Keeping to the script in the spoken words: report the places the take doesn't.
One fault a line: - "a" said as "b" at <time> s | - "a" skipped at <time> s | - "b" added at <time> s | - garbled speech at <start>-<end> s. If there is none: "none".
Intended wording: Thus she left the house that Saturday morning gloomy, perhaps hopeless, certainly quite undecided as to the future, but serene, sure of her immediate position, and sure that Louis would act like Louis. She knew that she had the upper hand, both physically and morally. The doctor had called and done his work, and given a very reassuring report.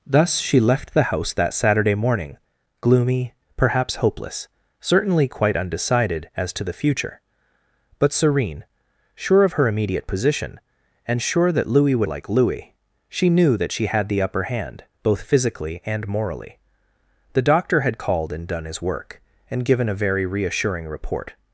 - "act" skipped at 12.1 s